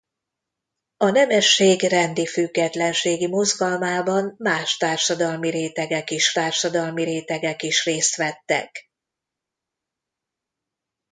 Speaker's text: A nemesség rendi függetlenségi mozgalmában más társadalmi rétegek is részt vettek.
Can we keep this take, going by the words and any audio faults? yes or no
no